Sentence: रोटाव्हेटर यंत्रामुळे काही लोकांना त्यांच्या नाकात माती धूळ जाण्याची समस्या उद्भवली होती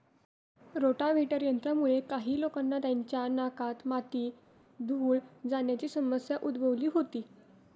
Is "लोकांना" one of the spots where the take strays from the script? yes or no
no